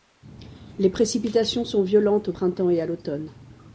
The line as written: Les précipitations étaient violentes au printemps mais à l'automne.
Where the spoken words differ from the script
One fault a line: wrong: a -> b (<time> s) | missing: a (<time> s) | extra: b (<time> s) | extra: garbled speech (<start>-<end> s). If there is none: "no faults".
wrong: étaient -> sont (1.6 s)
wrong: mais -> et (2.7 s)